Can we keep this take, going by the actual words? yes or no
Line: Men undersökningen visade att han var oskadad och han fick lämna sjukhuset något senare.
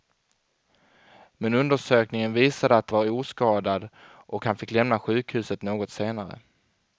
no